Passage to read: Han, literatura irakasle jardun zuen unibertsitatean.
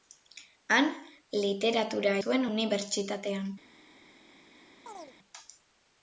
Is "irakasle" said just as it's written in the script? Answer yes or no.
no